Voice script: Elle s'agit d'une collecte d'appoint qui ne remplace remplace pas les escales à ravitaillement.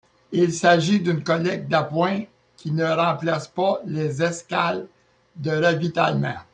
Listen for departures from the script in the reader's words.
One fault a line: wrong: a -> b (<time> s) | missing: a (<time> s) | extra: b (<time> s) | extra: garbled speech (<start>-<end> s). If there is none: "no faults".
wrong: Elle -> Il (0.3 s)
missing: remplace (3.5 s)
wrong: à -> de (5.3 s)